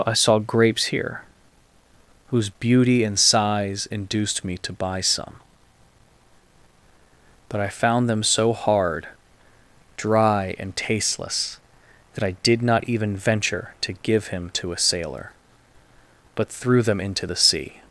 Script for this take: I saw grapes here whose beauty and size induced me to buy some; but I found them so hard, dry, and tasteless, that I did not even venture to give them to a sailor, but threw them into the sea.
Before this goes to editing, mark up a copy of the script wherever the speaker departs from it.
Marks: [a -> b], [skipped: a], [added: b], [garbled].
I saw grapes here whose beauty and size induced me to buy some; but I found them so hard, dry, and tasteless, that I did not even venture to give [them -> him] to a sailor, but threw them into the sea.